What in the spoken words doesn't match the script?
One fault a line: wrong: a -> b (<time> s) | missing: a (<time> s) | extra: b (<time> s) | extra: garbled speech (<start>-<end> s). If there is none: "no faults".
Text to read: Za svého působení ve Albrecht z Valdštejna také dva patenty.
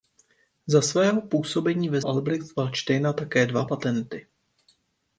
no faults